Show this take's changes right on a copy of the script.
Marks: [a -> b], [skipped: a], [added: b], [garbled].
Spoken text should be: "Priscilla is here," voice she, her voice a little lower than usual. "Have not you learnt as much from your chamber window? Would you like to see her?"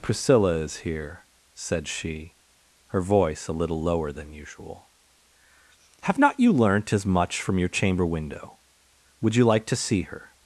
"Priscilla is here," [voice -> said] she, her voice a little lower than usual. "Have not you learnt as much from your chamber window? Would you like to see her?"